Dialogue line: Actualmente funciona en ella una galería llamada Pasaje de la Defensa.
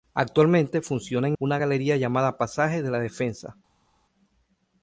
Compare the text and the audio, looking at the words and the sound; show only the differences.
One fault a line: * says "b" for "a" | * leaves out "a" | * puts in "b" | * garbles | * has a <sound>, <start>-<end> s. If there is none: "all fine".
* leaves out "ella"